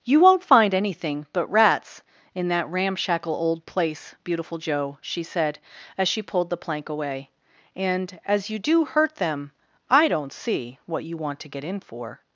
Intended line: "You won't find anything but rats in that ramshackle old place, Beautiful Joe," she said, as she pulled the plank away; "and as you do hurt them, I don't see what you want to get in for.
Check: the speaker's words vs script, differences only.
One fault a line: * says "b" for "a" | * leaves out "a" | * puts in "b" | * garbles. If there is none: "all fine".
all fine